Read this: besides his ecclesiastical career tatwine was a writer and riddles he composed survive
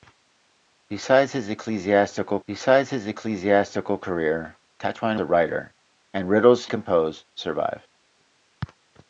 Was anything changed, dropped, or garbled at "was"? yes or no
yes